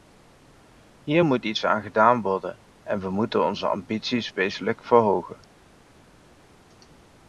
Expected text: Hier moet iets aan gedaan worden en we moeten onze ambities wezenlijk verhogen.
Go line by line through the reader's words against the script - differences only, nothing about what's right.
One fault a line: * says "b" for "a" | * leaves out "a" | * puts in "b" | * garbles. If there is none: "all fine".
all fine